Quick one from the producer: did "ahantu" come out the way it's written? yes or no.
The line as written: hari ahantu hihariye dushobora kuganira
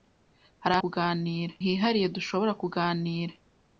no